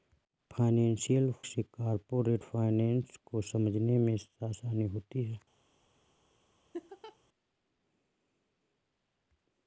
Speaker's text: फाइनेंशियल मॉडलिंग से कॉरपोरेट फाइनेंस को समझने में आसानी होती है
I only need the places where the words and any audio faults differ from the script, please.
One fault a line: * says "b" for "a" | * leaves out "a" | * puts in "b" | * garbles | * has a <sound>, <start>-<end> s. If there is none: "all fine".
* leaves out "मॉडलिंग"
* has a laugh, 6.7-7.2 s